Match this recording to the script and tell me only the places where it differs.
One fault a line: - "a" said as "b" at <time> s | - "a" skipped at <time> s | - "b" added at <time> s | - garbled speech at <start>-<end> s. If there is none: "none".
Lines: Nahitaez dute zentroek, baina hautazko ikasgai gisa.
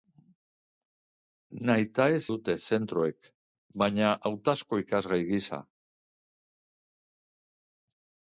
none